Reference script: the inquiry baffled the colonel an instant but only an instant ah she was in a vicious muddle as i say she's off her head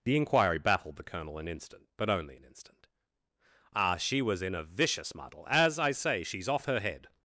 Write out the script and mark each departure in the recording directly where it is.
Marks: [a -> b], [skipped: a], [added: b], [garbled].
the inquiry baffled the colonel an instant but only an instant ah she was in a vicious muddle as i say she's off her head